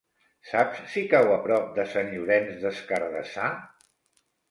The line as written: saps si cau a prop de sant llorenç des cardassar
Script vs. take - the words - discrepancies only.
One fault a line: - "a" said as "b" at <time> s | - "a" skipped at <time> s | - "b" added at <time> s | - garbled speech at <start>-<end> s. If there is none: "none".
none